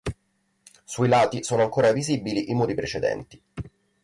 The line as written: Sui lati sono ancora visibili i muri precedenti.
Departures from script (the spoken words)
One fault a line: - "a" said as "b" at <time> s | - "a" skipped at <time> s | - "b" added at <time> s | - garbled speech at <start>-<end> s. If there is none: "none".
none